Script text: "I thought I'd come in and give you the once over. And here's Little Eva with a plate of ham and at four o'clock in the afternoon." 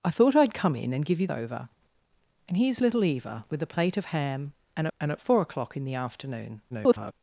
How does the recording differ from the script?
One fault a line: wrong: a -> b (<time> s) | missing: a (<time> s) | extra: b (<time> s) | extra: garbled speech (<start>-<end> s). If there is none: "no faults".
missing: the once (1.3 s)
extra: and (5.0 s)
extra: garbled speech (6.7-7.1 s)